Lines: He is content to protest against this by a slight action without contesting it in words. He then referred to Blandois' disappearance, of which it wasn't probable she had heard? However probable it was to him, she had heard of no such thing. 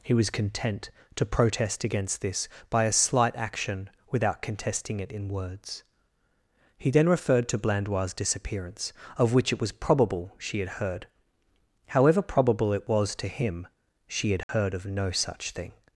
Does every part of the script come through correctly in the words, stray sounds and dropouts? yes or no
no